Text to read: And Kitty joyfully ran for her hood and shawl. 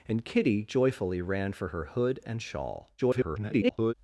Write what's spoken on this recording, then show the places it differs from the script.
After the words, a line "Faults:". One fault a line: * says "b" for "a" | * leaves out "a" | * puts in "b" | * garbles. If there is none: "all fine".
And Kitty joyfully ran for her hood and shawl. [garbled]
Faults:
* garbles